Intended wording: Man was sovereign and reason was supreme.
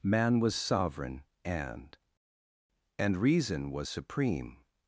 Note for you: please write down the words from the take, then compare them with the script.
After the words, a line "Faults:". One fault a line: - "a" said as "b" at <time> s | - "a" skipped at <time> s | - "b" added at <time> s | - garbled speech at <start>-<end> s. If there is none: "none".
Man was sovereign and and reason was supreme.
Faults:
- "and" added at 3.0 s